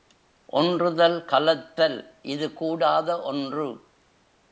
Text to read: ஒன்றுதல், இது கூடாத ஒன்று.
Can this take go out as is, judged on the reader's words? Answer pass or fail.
fail